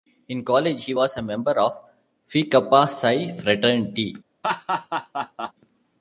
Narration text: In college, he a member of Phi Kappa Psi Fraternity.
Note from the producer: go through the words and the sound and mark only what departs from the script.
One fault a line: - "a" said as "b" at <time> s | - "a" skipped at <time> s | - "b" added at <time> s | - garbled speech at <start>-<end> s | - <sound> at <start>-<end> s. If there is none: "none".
- "was" added at 0.9 s
- laugh at 4.4-5.5 s